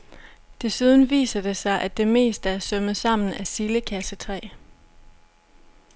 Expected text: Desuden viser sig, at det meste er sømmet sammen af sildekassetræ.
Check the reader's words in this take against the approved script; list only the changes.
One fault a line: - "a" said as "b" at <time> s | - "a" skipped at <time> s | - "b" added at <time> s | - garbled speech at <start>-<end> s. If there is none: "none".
- "det" added at 1.4 s